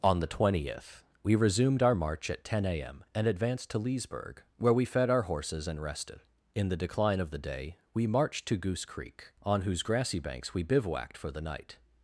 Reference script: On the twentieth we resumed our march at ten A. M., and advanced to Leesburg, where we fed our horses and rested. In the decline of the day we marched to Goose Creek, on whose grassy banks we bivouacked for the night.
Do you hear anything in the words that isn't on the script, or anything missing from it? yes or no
no